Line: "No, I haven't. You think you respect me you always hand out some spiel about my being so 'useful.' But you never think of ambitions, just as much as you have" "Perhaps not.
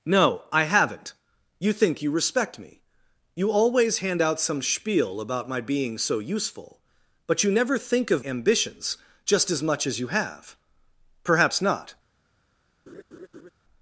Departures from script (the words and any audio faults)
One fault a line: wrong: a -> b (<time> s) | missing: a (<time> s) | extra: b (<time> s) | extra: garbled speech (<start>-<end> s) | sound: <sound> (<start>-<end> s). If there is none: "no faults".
sound: laugh (12.9-13.5 s)